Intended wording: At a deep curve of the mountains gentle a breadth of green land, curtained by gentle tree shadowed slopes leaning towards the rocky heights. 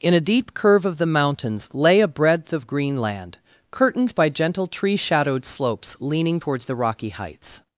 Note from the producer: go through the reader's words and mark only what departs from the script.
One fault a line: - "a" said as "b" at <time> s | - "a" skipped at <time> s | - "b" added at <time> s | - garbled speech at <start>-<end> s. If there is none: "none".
- "At" said as "In" at 0.0 s
- "gentle" said as "lay" at 1.7 s